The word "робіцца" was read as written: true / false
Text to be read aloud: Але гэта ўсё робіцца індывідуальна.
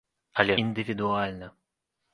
false